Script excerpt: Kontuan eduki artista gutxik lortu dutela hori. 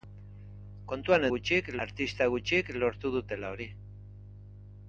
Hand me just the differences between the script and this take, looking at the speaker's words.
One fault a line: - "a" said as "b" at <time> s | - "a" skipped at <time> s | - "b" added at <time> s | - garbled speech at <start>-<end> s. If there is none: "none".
- "eduki" said as "gutxik" at 1.3 s